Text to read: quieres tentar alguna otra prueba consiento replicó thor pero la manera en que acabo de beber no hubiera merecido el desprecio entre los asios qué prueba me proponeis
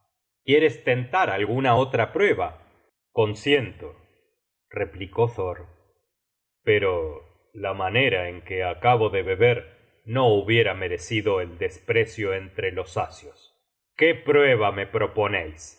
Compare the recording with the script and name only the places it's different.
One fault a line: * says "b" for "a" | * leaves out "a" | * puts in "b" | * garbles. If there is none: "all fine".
all fine